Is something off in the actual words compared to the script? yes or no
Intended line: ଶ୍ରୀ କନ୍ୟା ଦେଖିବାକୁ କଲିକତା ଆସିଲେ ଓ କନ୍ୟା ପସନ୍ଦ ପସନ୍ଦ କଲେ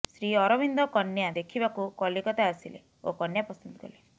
yes